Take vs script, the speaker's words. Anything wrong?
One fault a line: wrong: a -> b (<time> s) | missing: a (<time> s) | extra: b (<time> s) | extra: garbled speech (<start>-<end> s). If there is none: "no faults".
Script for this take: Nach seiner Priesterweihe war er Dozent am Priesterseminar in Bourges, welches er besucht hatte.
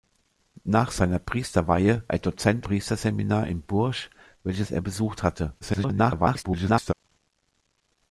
missing: war (2.0 s)
missing: am (2.7 s)
extra: garbled speech (5.6-6.9 s)